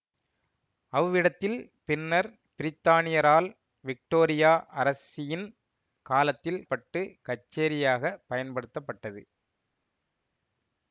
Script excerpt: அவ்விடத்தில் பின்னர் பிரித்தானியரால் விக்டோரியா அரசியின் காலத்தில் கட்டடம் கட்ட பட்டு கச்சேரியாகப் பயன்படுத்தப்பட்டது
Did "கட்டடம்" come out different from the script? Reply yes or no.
yes